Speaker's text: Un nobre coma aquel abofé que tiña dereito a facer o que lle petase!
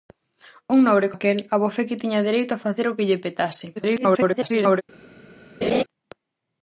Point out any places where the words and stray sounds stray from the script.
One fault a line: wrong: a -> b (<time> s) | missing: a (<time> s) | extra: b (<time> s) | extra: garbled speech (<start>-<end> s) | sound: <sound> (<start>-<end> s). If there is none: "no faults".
missing: coma (1.1 s)
extra: garbled speech (3.8-4.8 s)
sound: laugh (5.6-5.8 s)